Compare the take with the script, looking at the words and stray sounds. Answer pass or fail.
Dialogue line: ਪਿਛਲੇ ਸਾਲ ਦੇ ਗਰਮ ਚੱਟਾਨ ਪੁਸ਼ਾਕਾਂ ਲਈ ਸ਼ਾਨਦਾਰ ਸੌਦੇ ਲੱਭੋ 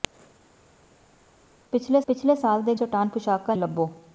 fail